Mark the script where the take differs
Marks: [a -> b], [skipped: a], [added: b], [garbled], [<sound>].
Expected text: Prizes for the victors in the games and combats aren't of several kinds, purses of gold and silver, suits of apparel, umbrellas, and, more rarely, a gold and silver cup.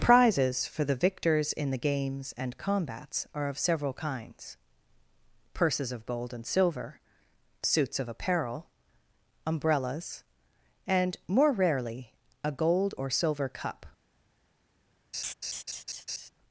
Prizes for the victors in the games and combats [aren't -> are] of several kinds, purses of gold and silver, suits of apparel, umbrellas, and, more rarely, a gold [and -> or] silver cup. [laugh]